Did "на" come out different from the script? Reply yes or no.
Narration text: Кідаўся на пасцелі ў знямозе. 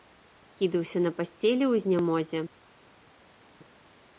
no